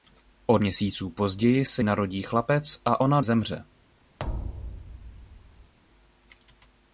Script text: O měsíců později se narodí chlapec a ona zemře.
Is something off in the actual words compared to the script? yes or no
no